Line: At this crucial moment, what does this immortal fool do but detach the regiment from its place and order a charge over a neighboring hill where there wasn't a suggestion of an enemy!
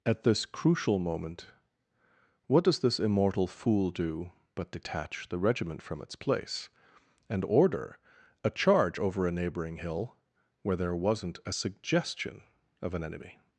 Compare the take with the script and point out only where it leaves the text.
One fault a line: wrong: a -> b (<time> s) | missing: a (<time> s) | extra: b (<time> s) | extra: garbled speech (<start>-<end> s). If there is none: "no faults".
no faults